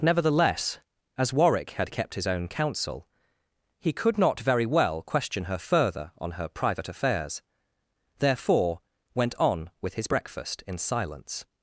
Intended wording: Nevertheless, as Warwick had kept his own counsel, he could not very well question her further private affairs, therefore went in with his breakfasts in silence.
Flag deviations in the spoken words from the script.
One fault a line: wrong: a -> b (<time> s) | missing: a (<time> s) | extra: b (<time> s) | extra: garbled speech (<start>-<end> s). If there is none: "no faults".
extra: on her (6.2 s)
wrong: in -> on (9.3 s)
wrong: breakfasts -> breakfast (10.0 s)